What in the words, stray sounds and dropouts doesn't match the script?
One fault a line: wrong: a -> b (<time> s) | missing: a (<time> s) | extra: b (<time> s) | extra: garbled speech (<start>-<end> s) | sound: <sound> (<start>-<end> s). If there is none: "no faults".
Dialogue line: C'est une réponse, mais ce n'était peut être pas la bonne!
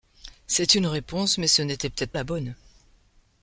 missing: pas (2.1 s)